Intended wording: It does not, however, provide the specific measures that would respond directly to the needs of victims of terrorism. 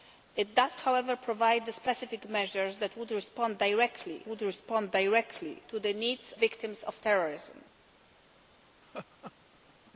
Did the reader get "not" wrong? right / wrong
wrong